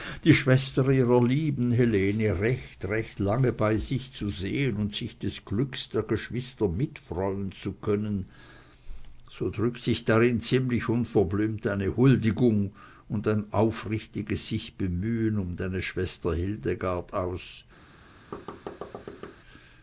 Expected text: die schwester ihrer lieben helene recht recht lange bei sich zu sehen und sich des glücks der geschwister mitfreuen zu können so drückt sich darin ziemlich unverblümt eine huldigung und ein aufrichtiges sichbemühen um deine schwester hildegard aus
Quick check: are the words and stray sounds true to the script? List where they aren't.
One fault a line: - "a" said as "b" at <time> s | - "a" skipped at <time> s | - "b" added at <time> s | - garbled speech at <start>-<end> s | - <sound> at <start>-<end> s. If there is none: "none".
- thud at 18.3-19.4 s